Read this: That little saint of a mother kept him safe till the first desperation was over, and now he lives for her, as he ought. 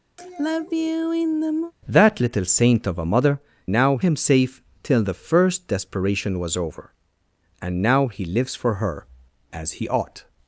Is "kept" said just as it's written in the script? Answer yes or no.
no